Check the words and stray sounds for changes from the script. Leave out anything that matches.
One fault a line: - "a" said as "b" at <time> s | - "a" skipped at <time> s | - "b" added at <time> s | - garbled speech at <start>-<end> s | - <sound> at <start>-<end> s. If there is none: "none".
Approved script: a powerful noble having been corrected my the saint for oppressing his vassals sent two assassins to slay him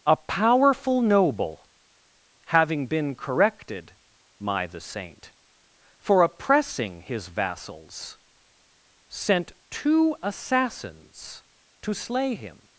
none